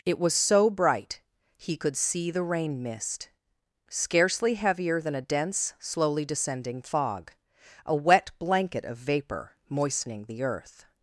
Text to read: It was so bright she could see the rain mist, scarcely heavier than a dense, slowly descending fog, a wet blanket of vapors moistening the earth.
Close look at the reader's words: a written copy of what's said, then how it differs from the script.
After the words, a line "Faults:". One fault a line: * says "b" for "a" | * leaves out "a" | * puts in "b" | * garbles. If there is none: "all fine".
It was so bright he could see the rain mist, scarcely heavier than a dense, slowly descending fog, a wet blanket of vapor moistening the earth.
Faults:
* says "he" for "she"
* says "vapor" for "vapors"